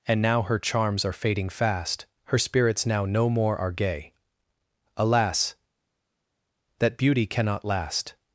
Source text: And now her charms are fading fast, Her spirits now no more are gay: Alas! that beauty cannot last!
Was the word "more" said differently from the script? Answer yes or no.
no